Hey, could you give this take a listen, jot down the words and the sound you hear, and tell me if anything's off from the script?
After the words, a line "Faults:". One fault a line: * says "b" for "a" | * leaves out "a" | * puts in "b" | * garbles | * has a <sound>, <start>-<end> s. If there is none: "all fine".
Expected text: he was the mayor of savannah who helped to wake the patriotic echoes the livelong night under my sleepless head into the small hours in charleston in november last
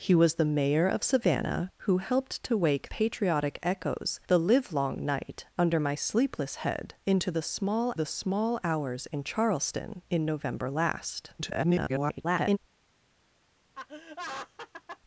he was the mayor of savannah who helped to wake patriotic echoes the livelong night under my sleepless head into the small the small hours in charleston in november last [garbled]
Faults:
* leaves out "the"
* puts in "the small"
* garbles
* has a laugh, 13.7-15.0 s